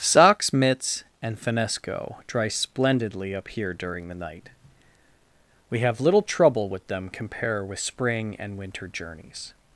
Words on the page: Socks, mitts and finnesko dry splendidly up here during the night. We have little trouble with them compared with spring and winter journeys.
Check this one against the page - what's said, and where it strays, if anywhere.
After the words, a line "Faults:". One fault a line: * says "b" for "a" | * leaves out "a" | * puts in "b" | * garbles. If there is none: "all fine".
Socks, mitts and finnesko dry splendidly up here during the night. We have little trouble with them compare with spring and winter journeys.
Faults:
* says "compare" for "compared"